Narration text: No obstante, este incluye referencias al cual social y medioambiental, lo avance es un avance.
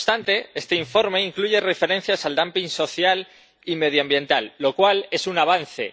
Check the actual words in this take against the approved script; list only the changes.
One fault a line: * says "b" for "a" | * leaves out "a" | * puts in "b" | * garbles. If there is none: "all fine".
* puts in "informe"
* says "dumping" for "cual"
* says "cual" for "avance"